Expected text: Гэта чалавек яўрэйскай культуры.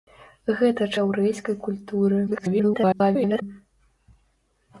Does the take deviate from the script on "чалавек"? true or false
true